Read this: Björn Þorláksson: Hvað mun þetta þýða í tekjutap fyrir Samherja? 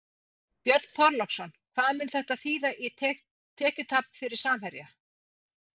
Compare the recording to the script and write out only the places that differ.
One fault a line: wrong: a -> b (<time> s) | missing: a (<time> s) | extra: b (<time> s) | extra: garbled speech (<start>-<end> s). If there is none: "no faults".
no faults